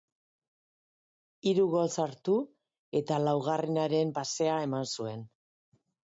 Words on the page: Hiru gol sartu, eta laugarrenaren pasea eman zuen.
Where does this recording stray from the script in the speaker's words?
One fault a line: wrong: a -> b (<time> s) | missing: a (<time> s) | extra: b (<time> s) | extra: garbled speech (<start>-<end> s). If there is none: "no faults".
no faults